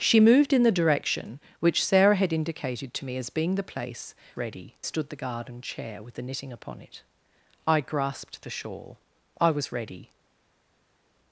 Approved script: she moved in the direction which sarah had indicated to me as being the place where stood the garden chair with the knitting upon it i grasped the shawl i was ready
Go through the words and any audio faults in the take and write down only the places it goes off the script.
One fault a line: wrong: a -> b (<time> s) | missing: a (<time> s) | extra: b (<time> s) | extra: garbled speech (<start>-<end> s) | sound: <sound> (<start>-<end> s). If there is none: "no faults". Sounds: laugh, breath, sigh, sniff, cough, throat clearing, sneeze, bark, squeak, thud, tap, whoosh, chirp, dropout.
wrong: where -> ready (4.4 s)